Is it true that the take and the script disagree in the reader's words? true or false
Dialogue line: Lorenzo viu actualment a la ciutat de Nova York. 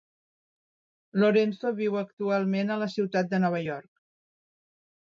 false